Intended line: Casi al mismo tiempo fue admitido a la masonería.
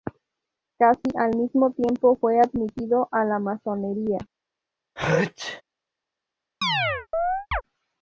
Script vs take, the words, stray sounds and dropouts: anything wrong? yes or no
yes